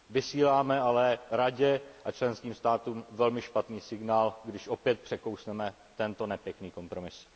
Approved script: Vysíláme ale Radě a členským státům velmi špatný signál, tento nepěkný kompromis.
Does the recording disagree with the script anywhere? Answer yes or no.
yes